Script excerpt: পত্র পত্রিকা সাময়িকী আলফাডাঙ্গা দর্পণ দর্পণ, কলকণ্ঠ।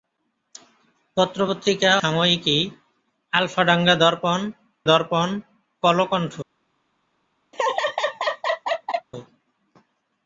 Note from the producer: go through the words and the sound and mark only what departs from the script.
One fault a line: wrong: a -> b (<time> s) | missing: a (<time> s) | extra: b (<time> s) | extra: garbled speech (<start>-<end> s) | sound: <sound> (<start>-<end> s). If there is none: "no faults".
sound: laugh (7.5-9.1 s)